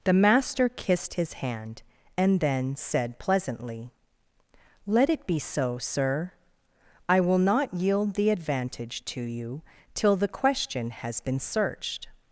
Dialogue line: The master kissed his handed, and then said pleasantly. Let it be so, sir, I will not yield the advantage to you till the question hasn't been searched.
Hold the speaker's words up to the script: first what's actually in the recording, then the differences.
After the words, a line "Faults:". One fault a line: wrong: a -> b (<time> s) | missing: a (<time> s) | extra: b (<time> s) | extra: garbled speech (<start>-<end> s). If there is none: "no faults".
The master kissed his hand, and then said pleasantly. Let it be so, sir, I will not yield the advantage to you till the question has been searched.
Faults:
wrong: handed -> hand (1.3 s)
wrong: hasn't -> has (10.9 s)